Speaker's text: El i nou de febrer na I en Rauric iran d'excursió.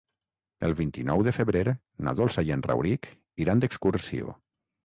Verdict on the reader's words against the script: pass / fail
fail